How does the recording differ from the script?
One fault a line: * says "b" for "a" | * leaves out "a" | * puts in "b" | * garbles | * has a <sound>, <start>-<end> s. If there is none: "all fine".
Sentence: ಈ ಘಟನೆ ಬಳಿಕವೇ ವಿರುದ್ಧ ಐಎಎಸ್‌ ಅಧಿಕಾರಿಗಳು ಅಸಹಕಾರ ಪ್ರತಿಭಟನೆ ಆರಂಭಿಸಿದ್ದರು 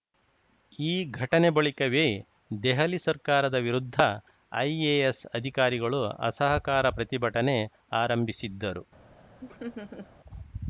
* puts in "ದೆಹಲಿ ಸರ್ಕಾರದ"
* has a laugh, 9.4-10.1 s